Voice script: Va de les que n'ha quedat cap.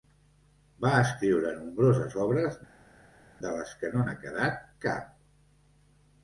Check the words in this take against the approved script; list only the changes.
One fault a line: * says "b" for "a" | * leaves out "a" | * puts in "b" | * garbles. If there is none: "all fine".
* puts in "escriure nombroses obres"
* puts in "no"